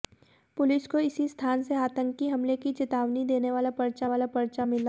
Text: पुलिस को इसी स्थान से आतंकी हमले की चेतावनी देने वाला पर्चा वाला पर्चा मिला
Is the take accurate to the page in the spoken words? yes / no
yes